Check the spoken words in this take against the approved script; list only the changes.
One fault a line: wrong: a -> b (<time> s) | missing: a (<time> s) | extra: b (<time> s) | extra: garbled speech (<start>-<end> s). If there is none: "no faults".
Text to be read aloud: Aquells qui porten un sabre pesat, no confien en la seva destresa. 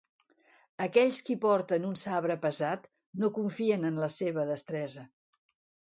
no faults